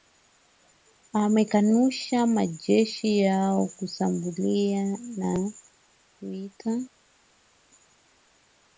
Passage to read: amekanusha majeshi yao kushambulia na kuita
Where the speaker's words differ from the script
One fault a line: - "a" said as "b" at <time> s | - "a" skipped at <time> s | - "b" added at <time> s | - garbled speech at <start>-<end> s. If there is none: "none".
none